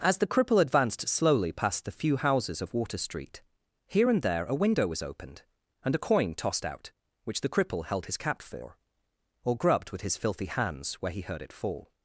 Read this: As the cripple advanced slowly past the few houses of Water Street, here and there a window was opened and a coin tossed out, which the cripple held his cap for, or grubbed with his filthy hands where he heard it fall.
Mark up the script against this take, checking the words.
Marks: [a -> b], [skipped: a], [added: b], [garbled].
As the cripple advanced slowly past the few houses of Water Street, here and there a window was opened and a coin tossed out, which the cripple held his cap for, or grubbed with his filthy hands where he heard it fall.